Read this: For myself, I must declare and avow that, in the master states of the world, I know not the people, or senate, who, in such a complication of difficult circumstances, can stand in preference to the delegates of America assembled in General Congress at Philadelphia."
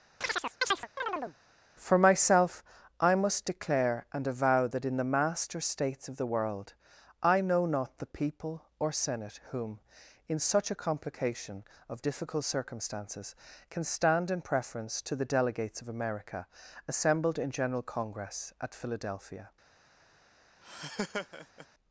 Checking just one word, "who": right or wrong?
wrong